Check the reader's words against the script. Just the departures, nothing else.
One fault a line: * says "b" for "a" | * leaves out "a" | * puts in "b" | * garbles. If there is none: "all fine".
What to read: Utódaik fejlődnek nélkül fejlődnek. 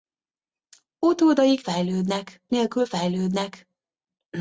all fine